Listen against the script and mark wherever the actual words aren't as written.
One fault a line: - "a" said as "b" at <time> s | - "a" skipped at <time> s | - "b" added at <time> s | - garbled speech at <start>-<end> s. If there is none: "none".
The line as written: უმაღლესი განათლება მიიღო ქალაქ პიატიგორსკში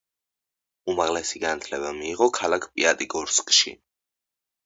none